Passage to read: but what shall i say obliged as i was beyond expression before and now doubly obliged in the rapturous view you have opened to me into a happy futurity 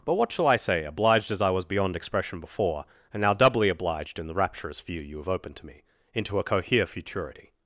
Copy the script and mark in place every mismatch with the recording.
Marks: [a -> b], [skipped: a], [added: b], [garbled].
but what shall i say obliged as i was beyond expression before and now doubly obliged in the rapturous view you have opened to me into a [happy -> cohere] futurity